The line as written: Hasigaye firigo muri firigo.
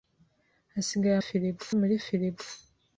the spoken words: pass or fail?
pass